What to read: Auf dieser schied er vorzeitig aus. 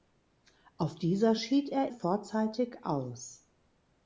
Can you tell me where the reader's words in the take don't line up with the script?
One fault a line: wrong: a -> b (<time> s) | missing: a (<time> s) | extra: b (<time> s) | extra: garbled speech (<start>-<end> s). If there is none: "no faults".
no faults